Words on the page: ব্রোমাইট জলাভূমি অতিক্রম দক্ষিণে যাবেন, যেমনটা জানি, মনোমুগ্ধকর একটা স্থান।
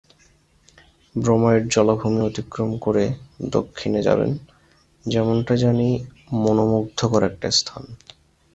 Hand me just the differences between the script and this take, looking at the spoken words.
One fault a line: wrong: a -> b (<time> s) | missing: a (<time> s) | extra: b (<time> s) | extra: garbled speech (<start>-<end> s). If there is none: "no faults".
extra: করে (2.8 s)